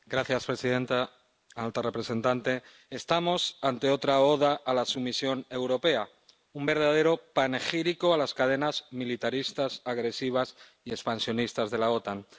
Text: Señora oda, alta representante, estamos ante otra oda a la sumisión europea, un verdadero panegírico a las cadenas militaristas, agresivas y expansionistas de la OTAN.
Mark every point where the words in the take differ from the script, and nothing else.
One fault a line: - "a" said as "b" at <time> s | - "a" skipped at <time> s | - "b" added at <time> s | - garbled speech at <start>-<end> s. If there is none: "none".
- "oda" said as "presidenta" at 0.5 s